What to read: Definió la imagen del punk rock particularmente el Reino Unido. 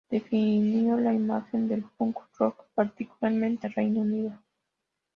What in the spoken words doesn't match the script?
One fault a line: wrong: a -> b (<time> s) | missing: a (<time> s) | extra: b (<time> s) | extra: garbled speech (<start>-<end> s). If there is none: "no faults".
no faults